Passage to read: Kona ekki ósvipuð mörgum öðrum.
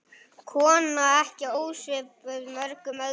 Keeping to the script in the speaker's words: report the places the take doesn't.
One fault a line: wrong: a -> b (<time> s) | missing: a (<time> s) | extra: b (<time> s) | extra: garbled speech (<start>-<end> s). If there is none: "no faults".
no faults